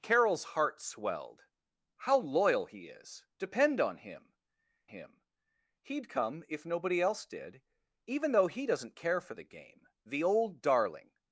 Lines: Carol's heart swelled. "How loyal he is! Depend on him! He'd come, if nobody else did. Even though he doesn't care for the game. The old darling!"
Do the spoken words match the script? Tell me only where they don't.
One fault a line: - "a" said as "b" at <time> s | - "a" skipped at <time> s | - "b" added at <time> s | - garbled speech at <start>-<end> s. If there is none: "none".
- "him" added at 4.8 s